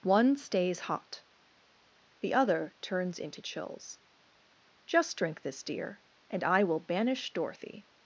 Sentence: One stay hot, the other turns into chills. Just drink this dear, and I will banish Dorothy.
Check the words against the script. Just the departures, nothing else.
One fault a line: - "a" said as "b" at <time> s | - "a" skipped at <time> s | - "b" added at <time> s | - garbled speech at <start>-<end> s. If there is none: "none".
- "stay" said as "stays" at 0.3 s